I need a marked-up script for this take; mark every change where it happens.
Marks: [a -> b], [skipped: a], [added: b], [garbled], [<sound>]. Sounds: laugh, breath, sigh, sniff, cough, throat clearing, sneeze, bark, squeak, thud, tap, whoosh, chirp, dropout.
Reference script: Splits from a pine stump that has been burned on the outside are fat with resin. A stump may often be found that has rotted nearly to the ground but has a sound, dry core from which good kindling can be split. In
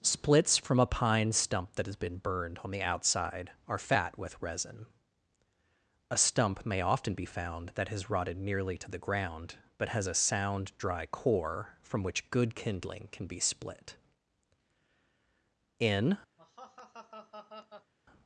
Splits from a pine stump that has been burned on the outside are fat with resin. A stump may often be found that has rotted nearly to the ground but has a sound, dry core from which good kindling can be split. In [laugh]